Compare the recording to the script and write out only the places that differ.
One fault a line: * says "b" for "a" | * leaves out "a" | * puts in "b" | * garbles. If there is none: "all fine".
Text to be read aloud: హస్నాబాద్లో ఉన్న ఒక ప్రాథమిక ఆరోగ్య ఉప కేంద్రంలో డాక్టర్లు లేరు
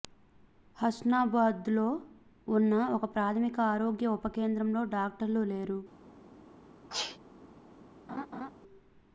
all fine